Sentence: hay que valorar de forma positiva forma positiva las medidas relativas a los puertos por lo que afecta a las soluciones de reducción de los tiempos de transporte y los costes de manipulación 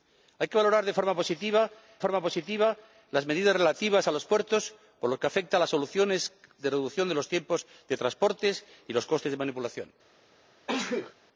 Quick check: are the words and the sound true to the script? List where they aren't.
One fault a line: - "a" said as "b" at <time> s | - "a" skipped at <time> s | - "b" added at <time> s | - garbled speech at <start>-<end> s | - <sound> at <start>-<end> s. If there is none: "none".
- sneeze at 10.7-11.2 s